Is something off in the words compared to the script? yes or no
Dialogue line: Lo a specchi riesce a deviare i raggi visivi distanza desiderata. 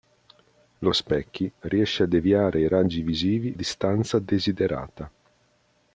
no